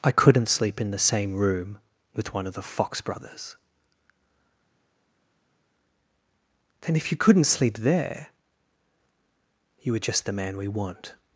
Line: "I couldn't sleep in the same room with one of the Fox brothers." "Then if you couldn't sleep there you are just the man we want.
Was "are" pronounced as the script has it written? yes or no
no